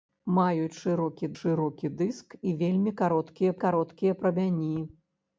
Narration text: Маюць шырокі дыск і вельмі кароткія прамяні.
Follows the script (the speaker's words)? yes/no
no